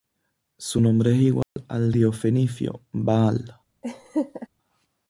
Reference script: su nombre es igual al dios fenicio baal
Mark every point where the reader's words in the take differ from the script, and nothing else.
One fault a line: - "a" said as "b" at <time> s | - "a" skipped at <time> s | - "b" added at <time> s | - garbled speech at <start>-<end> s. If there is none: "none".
none